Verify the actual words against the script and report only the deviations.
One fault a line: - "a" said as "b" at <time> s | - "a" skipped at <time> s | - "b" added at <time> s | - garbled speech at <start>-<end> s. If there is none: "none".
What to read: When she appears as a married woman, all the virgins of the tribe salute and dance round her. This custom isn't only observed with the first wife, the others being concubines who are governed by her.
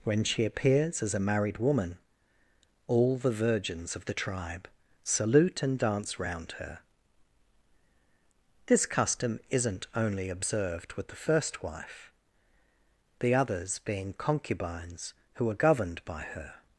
none